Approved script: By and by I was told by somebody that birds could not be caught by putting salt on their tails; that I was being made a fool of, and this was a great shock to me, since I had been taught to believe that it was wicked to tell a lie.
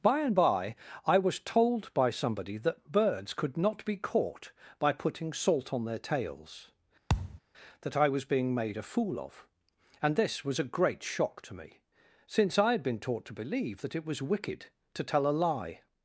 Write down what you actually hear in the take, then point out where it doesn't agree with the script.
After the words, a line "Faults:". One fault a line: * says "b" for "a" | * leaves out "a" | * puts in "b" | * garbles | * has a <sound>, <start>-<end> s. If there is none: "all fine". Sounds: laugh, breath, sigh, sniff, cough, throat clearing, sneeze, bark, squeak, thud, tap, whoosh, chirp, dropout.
By and by I was told by somebody that birds could not be caught by putting salt on their tails; that I was being made a fool of, and this was a great shock to me, since I had been taught to believe that it was wicked to tell a lie.
Faults:
* has a thud, 7.1-7.4 s